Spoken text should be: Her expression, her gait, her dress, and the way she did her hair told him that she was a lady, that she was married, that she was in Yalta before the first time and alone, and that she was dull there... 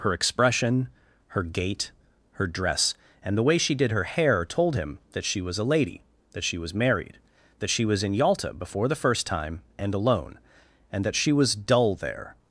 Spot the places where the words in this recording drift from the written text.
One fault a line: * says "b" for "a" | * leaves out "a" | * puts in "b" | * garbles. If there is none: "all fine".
all fine